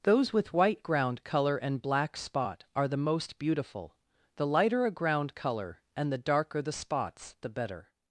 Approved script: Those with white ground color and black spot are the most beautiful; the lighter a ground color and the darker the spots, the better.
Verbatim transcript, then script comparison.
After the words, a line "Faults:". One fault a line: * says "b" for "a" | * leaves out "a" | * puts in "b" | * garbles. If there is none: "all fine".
Those with white ground color and black spot are the most beautiful; the lighter a ground color and the darker the spots, the better.
Faults:
all fine